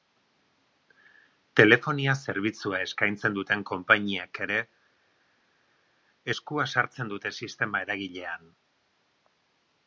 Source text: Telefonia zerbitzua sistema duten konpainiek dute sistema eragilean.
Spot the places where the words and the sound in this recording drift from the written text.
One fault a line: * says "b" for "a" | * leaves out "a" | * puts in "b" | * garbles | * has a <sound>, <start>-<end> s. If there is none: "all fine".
* says "eskaintzen" for "sistema"
* puts in "ere eskua sartzen"